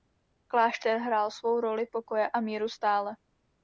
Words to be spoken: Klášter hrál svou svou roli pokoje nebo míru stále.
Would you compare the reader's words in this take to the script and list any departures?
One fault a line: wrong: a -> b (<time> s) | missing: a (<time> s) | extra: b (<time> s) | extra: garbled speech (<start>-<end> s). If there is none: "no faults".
missing: svou (1.6 s)
wrong: nebo -> a (2.3 s)